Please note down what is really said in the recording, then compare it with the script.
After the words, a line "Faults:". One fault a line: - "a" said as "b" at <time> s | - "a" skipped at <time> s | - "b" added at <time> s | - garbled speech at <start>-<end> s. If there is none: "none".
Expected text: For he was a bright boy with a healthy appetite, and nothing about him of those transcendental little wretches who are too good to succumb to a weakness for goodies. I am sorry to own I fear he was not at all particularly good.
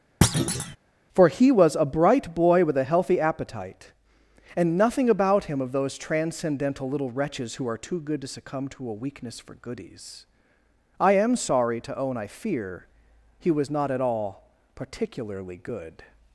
For he was a bright boy with a healthy appetite, and nothing about him of those transcendental little wretches who are too good to succumb to a weakness for goodies. I am sorry to own I fear he was not at all particularly good.
Faults:
none